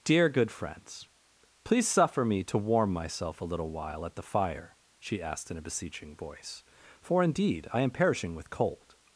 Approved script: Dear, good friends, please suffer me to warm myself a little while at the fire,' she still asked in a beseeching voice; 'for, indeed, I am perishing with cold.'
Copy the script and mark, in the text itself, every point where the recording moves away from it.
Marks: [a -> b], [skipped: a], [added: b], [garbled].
Dear, good friends, please suffer me to warm myself a little while at the fire,' she [skipped: still] asked in a beseeching voice; 'for, indeed, I am perishing with cold.'